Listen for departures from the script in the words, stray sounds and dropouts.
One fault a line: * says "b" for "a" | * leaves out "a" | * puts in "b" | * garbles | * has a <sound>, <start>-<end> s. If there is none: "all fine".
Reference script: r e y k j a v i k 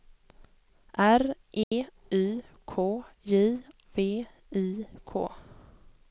* has a dropout, 1.6-1.7 s
* leaves out "a"